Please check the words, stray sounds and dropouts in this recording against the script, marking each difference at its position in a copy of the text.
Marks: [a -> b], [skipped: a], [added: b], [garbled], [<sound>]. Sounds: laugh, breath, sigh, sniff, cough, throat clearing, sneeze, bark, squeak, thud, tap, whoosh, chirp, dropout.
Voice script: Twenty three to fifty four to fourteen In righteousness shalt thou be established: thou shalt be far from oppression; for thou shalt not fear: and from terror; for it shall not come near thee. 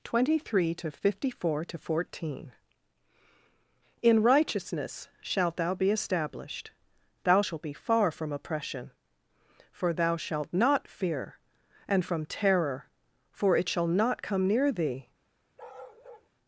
Twenty three to fifty four to fourteen In righteousness shalt thou be established: thou shalt be far from oppression; for thou shalt not fear: and from terror; for it shall not come near thee. [bark]